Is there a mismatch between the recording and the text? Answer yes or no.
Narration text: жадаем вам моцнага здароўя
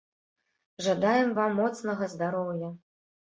no